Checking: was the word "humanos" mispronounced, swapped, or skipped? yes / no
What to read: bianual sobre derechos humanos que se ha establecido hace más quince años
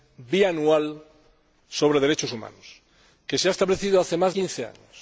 no